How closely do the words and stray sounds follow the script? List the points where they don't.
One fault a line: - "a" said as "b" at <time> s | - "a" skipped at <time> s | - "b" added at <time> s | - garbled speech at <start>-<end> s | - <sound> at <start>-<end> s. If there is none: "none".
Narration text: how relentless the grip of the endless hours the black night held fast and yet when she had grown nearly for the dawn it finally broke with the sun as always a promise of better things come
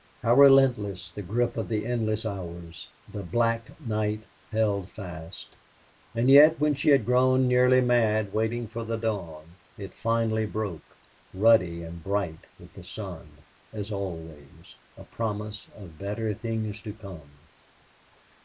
- "mad waiting" added at 7.8 s
- "ruddy and bright" added at 11.3 s
- "to" added at 16.8 s